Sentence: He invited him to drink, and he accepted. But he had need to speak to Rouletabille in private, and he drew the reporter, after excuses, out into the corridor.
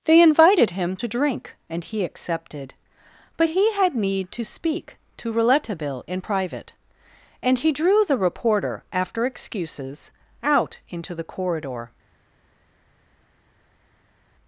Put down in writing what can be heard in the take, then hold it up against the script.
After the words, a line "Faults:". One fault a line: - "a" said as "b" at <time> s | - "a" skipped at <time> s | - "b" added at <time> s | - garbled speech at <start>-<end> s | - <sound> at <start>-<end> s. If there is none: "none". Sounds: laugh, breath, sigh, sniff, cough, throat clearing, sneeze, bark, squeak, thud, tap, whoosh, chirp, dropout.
They invited him to drink, and he accepted. But he had need to speak to Rouletabille in private, and he drew the reporter, after excuses, out into the corridor.
Faults:
- "He" said as "They" at 0.1 s